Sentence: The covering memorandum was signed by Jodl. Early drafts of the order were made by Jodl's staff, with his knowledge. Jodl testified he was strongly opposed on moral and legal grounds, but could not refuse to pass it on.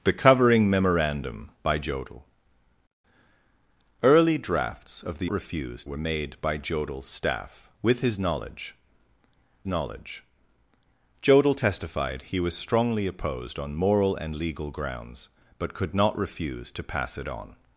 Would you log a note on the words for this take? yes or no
yes